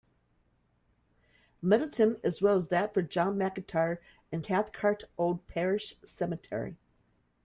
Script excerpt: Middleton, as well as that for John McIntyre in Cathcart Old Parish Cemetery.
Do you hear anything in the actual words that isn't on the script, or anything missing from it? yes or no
no